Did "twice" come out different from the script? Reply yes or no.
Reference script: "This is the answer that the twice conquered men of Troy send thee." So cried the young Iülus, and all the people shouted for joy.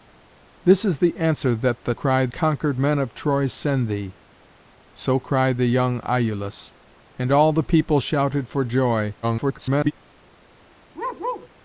yes